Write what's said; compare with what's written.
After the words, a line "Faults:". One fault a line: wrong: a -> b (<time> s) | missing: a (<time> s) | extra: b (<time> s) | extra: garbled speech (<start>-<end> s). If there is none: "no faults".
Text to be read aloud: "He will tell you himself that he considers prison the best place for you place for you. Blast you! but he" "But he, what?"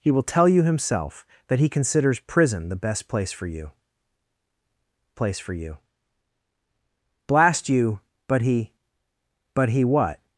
"He will tell you himself that he considers prison the best place for you place for you. Blast you! but he" "But he, what?"
Faults:
no faults